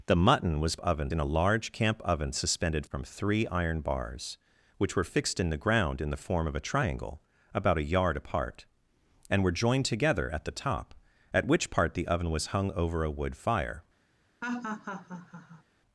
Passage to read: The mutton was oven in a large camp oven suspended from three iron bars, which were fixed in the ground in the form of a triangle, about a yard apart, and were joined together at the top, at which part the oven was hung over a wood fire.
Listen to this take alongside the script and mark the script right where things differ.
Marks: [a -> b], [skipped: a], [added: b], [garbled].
The mutton was oven in a large camp oven suspended from three iron bars, which were fixed in the ground in the form of a triangle, about a yard apart, and were joined together at the top, at which part the oven was hung over a wood fire.